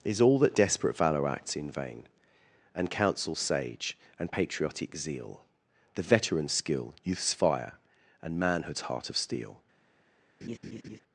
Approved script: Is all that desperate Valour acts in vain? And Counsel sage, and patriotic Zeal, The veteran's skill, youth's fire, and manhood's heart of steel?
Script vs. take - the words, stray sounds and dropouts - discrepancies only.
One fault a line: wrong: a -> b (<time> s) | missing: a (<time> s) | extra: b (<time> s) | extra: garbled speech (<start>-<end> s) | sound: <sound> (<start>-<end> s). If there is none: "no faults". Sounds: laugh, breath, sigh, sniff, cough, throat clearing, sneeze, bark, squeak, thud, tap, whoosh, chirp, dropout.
sound: laugh (10.4-11.0 s)